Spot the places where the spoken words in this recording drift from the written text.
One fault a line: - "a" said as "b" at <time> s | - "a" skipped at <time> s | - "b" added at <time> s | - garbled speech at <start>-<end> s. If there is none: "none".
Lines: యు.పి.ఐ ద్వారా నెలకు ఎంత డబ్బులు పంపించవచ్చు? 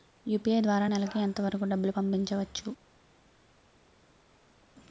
- "వరకూ" added at 1.4 s